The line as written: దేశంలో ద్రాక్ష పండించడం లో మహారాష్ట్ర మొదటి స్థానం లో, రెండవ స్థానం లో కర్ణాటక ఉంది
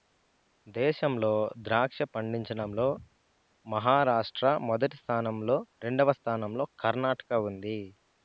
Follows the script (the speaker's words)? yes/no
yes